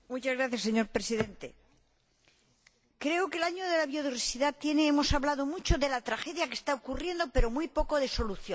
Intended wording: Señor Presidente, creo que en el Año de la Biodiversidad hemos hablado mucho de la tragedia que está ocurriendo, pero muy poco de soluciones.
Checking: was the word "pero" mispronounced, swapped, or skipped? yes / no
no